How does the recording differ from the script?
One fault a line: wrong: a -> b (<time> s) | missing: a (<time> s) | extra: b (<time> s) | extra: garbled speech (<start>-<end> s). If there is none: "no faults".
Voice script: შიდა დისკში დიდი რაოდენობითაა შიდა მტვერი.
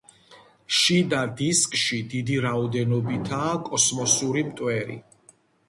wrong: შიდა -> კოსმოსური (3.7 s)